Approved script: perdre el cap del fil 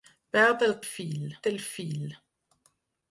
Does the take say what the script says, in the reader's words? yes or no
no